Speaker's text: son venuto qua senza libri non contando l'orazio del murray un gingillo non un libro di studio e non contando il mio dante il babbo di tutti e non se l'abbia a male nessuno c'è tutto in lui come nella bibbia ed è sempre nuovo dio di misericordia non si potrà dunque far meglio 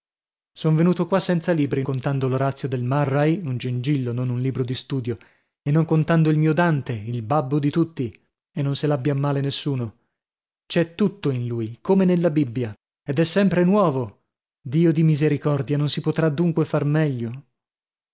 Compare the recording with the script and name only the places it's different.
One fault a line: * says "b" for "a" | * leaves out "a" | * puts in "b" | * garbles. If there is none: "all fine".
* leaves out "non"